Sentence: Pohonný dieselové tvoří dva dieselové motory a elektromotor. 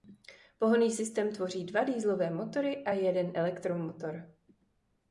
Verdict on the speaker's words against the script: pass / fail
fail